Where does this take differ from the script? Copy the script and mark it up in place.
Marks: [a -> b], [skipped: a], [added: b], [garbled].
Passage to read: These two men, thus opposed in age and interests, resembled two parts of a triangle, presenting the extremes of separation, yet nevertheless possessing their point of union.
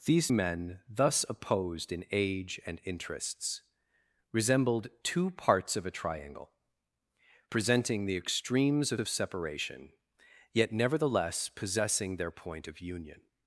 These [skipped: two] men, thus opposed in age and interests, resembled two parts of a triangle, presenting the extremes of [added: of] separation, yet nevertheless possessing their point of union.